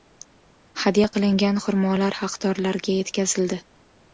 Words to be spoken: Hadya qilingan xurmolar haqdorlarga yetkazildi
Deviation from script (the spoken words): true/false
false